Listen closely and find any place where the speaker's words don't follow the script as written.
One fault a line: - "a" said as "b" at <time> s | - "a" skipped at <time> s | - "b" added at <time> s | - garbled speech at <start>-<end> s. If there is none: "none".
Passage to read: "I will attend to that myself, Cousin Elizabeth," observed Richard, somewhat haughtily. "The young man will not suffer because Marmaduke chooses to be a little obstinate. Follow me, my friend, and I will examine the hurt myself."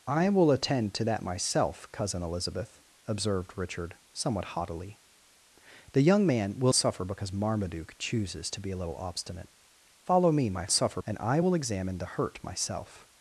- "not" skipped at 6.7 s
- "friend" said as "suffer" at 10.7 s